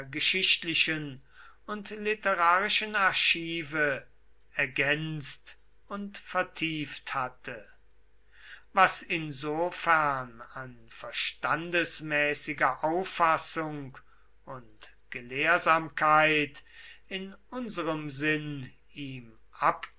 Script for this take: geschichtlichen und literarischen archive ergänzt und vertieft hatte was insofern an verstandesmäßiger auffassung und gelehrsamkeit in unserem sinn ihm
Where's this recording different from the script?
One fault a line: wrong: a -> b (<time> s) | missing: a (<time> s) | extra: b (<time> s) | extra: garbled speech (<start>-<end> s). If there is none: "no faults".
no faults